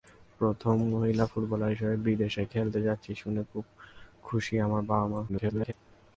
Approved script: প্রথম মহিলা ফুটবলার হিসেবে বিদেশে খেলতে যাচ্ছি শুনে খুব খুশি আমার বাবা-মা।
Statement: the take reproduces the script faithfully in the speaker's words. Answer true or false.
false